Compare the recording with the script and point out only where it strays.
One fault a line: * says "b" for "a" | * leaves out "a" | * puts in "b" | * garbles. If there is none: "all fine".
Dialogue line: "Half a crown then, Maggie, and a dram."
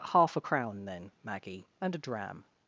all fine